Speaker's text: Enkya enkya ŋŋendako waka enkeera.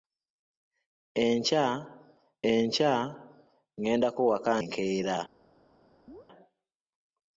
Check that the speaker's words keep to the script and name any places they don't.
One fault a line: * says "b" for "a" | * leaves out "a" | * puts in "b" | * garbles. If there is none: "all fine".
all fine